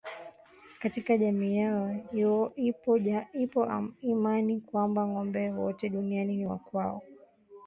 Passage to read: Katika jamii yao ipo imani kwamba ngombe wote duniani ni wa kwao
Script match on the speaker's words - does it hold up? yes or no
yes